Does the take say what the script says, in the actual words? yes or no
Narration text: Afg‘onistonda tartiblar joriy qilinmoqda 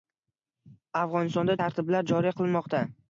yes